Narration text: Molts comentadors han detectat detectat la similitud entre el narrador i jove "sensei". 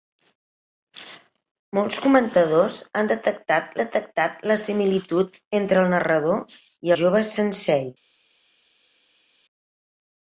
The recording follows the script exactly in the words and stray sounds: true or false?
true